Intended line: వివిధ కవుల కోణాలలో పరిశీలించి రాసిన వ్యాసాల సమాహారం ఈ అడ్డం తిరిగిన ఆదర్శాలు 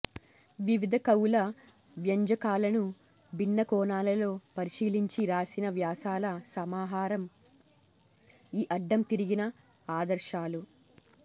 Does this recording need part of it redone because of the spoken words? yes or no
yes